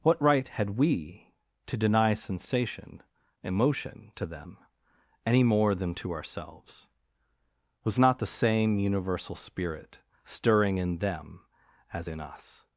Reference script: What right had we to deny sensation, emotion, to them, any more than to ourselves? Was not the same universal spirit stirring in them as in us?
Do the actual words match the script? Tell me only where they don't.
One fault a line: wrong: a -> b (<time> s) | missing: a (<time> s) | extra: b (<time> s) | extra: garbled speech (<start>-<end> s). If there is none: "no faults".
no faults